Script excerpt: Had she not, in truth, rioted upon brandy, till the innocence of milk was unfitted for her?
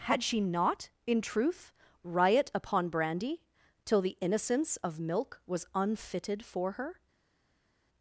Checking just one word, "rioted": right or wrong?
wrong